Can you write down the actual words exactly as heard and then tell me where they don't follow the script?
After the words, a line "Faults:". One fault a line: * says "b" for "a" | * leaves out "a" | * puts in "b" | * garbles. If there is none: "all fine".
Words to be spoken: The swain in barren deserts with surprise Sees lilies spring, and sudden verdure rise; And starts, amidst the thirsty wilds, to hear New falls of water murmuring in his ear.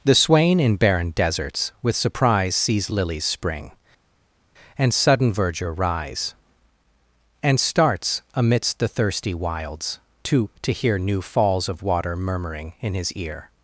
The swain in barren deserts with surprise Sees lilies spring, and sudden verdure rise; And starts, amidst the thirsty wilds, to to hear New falls of water murmuring in his ear.
Faults:
* puts in "to"